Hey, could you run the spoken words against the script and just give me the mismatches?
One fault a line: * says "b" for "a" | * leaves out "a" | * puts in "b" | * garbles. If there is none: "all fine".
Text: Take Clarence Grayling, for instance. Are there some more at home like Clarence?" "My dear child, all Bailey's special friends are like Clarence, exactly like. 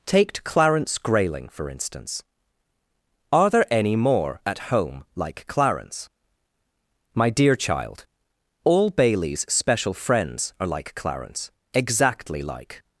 * says "any" for "some"